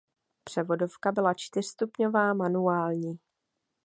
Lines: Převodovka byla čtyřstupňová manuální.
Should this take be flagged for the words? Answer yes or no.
no